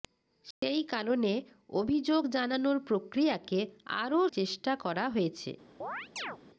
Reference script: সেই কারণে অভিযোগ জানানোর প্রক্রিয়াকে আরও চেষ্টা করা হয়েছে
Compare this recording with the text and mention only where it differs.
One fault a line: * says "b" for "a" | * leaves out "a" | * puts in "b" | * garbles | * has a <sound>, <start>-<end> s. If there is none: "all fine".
* has a dropout, 0.5-0.6 s
* has a chirp, 5.8-6.4 s